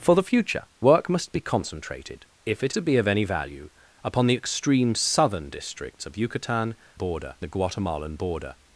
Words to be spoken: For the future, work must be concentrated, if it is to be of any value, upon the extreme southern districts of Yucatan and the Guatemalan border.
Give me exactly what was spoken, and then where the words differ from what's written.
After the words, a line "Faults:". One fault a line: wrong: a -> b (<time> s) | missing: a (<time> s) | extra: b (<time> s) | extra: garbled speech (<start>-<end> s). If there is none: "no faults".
For the future, work must be concentrated, if it to be of any value, upon the extreme southern districts of Yucatan border the Guatemalan border.
Faults:
missing: is (2.7 s)
wrong: and -> border (6.9 s)